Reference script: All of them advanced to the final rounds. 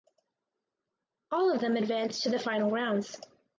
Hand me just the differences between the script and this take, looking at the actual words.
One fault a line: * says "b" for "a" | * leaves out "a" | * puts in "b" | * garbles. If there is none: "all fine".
all fine